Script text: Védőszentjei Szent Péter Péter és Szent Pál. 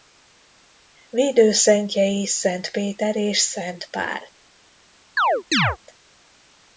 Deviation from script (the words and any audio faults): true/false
true